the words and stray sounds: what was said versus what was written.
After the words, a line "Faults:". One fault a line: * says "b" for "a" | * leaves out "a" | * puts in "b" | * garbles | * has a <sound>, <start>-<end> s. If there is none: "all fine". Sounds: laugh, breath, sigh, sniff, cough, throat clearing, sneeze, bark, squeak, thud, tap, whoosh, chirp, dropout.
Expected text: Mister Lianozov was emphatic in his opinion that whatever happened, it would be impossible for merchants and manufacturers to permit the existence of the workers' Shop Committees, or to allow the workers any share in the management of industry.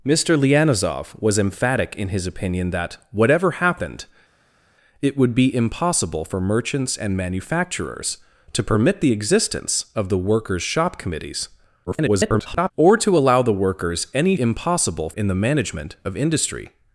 Mister Lianozov was emphatic in his opinion that whatever happened, it would be impossible for merchants and manufacturers to permit the existence of the workers' Shop Committees, [garbled] or to allow the workers any impossible in the management of industry.
Faults:
* garbles
* says "impossible" for "share"